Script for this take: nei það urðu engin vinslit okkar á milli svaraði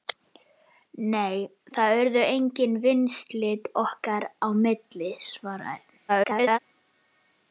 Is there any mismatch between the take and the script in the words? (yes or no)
yes